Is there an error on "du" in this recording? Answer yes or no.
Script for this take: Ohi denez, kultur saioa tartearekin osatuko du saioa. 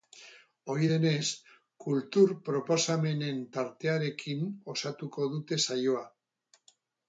yes